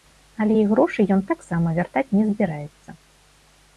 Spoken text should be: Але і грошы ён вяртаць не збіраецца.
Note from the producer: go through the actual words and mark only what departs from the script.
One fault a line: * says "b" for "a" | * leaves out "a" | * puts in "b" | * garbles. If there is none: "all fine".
* puts in "таксама"